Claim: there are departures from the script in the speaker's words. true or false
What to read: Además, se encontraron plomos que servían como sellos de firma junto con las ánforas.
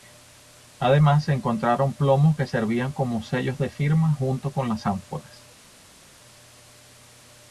false